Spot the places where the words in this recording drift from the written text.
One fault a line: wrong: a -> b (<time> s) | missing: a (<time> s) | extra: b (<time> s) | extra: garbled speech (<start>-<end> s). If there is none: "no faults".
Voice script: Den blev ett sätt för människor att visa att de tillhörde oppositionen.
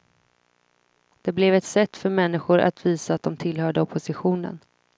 wrong: Den -> Det (1.2 s)